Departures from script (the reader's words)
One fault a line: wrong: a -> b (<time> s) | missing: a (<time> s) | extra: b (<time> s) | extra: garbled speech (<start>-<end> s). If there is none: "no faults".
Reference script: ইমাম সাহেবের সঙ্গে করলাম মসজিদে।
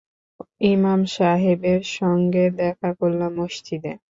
extra: দেখা (2.6 s)